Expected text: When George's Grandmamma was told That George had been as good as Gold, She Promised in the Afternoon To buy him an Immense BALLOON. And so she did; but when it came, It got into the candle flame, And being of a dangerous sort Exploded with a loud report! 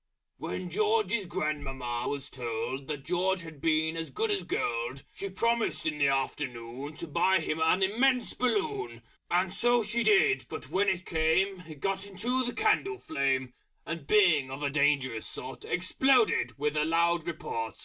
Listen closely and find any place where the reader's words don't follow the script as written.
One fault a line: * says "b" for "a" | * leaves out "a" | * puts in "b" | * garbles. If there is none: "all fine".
all fine